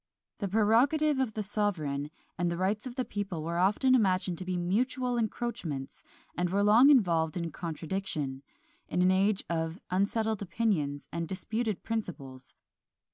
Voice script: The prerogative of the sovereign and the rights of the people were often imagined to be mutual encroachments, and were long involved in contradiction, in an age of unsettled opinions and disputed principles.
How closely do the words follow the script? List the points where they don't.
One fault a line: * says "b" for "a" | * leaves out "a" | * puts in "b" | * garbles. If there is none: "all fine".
all fine